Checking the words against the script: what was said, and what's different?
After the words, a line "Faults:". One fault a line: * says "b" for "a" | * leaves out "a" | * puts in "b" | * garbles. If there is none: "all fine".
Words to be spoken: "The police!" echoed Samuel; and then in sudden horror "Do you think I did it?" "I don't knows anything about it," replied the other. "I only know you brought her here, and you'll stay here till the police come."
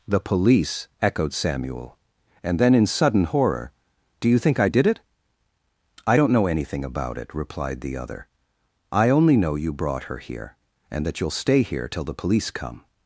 "The police!" echoed Samuel; and then in sudden horror "Do you think I did it?" "I don't know anything about it," replied the other. "I only know you brought her here, and that you'll stay here till the police come."
Faults:
* says "know" for "knows"
* puts in "that"